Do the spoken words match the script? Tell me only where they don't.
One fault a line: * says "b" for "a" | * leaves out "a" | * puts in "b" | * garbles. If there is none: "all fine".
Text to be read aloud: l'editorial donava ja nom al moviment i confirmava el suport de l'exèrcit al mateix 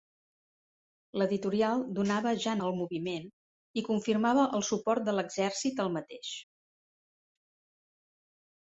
* leaves out "nom"